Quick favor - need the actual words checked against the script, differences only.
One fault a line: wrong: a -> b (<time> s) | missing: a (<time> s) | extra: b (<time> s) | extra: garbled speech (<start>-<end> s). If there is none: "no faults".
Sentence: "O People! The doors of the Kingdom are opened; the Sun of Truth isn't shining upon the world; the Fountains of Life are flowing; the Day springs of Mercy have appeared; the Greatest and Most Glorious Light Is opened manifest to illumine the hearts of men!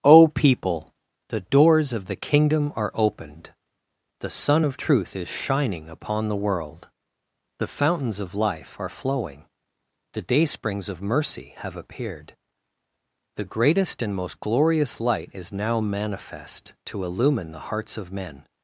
wrong: isn't -> is (5.2 s)
wrong: opened -> now (15.5 s)